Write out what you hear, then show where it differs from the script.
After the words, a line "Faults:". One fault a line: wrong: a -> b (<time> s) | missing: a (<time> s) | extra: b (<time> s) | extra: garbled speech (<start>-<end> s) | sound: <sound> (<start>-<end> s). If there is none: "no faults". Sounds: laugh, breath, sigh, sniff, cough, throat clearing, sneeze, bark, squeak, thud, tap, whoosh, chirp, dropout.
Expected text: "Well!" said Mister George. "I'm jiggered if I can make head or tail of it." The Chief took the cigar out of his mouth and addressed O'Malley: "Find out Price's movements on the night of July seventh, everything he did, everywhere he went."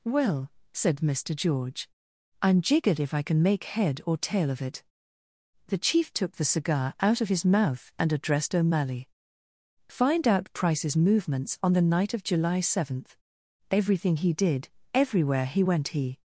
"Well!" said Mister George. "I'm jiggered if I can make head or tail of it." The Chief took the cigar out of his mouth and addressed O'Malley: "Find out Price's movements on the night of July seventh, everything he did, everywhere he went." He
Faults:
extra: He (15.9 s)